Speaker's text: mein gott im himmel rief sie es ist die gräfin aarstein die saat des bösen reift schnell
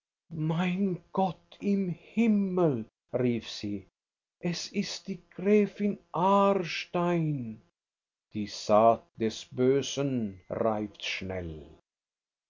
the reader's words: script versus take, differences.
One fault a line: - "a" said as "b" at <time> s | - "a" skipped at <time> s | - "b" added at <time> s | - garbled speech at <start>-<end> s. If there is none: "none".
none